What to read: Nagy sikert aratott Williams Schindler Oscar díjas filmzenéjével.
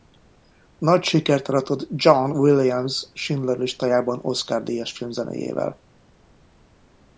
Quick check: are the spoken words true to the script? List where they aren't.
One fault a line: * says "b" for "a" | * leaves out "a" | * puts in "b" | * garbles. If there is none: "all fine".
* puts in "John"
* puts in "listájában"